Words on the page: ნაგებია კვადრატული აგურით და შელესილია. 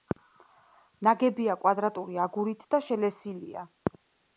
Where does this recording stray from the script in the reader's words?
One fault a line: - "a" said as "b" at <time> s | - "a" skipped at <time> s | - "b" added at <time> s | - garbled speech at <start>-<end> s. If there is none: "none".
none